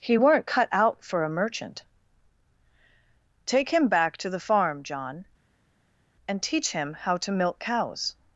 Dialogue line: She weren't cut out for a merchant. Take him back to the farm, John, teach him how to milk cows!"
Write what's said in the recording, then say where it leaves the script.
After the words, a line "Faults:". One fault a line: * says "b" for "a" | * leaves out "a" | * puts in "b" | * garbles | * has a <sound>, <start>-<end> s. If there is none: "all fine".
He weren't cut out for a merchant. Take him back to the farm, John, and teach him how to milk cows!"
Faults:
* says "He" for "She"
* puts in "and"